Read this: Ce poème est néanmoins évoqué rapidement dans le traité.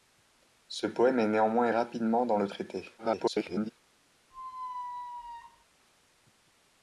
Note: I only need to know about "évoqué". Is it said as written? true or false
false